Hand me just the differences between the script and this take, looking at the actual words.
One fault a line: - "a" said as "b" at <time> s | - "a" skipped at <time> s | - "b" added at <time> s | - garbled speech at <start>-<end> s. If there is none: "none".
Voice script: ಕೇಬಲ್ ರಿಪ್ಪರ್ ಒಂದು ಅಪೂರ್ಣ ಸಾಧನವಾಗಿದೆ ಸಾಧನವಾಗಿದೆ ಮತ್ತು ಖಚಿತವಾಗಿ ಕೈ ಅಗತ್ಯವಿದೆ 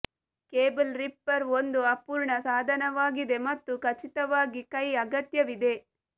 - "ಸಾಧನವಾಗಿದೆ" skipped at 3.4 s